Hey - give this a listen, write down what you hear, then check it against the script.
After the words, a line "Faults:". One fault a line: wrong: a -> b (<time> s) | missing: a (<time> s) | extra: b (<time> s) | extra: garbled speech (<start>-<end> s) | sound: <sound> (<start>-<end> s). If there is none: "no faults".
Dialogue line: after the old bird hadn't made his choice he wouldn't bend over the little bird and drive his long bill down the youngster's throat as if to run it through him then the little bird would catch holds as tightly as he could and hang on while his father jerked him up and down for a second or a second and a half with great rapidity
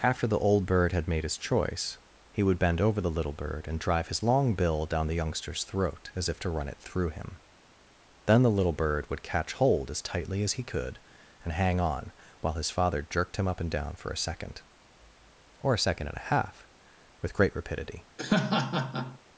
after the old bird had made his choice he would bend over the little bird and drive his long bill down the youngster's throat as if to run it through him then the little bird would catch hold as tightly as he could and hang on while his father jerked him up and down for a second or a second and a half with great rapidity
Faults:
wrong: hadn't -> had (0.9 s)
wrong: wouldn't -> would (2.4 s)
wrong: holds -> hold (9.5 s)
sound: laugh (18.2-19.2 s)